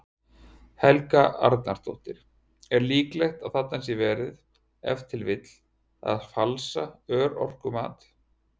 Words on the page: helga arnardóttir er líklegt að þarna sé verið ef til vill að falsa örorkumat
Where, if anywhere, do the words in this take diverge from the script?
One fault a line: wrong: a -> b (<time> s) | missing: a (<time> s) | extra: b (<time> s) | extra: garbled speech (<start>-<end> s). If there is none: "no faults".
no faults